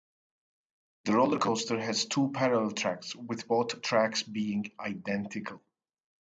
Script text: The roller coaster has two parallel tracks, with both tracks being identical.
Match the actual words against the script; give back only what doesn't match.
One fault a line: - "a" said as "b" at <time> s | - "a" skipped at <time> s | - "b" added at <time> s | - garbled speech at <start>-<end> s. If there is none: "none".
none